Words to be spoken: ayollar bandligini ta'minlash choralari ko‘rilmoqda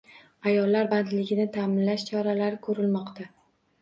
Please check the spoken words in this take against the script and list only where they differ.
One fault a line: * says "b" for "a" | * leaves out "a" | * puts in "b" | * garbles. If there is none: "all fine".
all fine